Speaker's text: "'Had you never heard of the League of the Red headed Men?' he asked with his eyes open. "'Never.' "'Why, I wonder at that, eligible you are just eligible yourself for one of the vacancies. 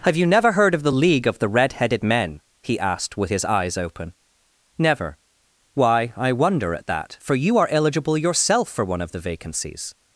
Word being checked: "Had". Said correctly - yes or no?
no